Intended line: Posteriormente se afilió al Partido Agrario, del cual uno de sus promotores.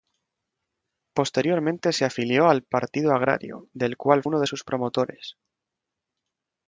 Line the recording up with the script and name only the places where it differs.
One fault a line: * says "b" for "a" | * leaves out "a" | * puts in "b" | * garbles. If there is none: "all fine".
all fine